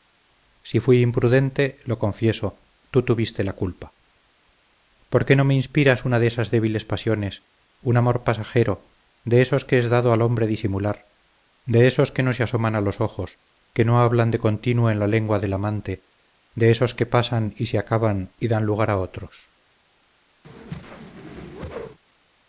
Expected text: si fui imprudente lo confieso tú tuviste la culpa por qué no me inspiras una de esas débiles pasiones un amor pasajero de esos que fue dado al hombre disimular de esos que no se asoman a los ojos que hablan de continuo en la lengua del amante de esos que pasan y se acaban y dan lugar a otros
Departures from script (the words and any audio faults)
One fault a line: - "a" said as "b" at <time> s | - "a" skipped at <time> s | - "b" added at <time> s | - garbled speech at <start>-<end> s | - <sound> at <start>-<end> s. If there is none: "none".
- "fue" said as "es" at 9.8 s
- "no" added at 13.8 s
- whoosh at 20.4-22.0 s